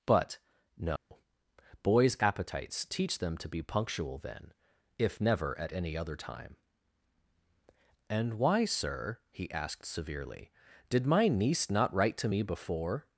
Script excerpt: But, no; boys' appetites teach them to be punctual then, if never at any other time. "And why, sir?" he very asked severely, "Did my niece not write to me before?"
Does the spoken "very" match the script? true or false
false